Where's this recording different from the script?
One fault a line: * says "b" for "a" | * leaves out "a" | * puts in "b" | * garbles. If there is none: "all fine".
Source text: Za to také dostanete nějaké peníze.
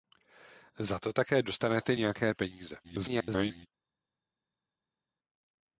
* garbles